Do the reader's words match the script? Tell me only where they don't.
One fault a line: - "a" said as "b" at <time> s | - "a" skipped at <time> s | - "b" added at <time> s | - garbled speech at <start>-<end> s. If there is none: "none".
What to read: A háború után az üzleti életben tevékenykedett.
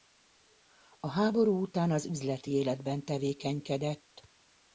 none